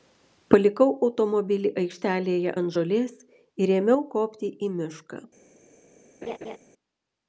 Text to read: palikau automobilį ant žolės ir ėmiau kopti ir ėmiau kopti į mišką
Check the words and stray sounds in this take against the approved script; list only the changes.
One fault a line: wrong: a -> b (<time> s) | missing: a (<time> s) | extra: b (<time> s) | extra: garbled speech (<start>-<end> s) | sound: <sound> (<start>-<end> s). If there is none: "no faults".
extra: aikštelėje (1.8 s)
missing: ir ėmiau kopti (4.5 s)
sound: laugh (6.2-6.6 s)